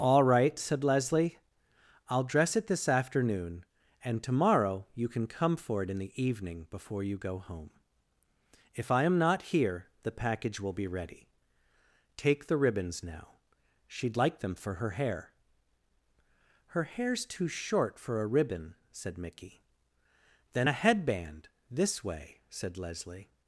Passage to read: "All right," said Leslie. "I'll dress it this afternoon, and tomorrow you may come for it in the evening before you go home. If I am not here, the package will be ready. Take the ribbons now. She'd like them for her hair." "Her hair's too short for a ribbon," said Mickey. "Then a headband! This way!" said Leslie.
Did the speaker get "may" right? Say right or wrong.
wrong